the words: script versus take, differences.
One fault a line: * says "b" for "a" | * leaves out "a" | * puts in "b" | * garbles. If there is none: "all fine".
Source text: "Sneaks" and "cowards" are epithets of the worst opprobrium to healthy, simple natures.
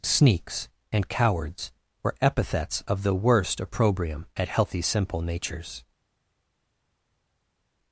* says "were" for "are"
* says "at" for "to"